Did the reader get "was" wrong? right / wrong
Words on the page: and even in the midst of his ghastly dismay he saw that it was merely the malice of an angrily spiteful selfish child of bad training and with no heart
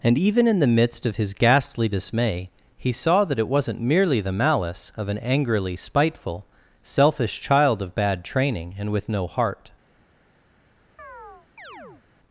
wrong